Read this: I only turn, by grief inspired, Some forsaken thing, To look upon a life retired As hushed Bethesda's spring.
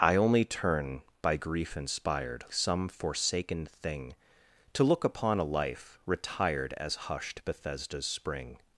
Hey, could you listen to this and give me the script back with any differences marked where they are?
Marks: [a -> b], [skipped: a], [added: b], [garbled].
I only turn, by grief inspired, Some forsaken thing, To look upon a life retired As hushed Bethesda's spring.